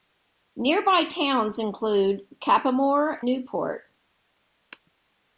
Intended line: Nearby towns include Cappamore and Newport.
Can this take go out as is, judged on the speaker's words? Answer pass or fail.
fail